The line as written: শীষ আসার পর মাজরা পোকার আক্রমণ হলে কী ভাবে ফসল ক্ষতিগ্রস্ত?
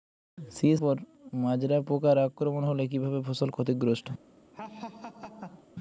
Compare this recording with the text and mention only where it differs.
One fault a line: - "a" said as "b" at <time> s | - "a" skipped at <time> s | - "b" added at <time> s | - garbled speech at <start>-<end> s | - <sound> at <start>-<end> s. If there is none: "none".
- "আসার" skipped at 0.8 s
- laugh at 4.5-5.7 s